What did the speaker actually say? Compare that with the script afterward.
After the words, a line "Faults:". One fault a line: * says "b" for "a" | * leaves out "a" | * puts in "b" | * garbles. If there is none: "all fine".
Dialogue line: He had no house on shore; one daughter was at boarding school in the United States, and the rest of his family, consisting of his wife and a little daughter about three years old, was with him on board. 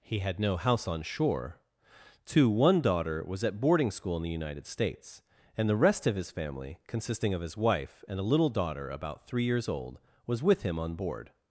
He had no house on shore; two one daughter was at boarding school in the United States, and the rest of his family, consisting of his wife and a little daughter about three years old, was with him on board.
Faults:
* puts in "two"